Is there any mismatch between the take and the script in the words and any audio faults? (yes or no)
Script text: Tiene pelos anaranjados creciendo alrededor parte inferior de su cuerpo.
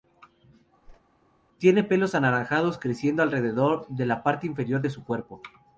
yes